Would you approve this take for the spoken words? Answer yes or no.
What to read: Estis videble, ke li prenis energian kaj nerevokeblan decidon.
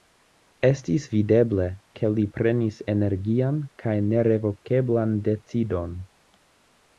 yes